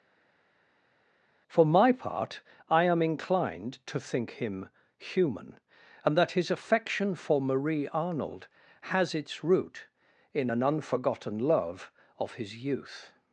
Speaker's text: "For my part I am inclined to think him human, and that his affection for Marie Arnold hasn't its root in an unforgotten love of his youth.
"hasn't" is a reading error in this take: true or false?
true